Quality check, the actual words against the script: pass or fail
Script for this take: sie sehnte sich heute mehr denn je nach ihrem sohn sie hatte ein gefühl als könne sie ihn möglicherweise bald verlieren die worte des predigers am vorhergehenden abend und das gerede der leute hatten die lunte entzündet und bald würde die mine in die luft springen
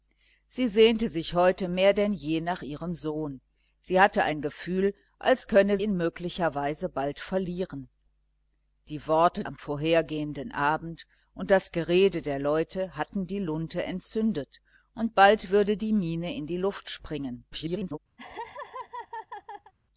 fail